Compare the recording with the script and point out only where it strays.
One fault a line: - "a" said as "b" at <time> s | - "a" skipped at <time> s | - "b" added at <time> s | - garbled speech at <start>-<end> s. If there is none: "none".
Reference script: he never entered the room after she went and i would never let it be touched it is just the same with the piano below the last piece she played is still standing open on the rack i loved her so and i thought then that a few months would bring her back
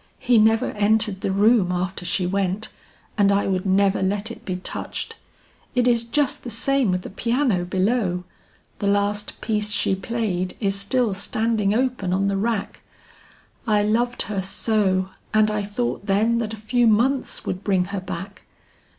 none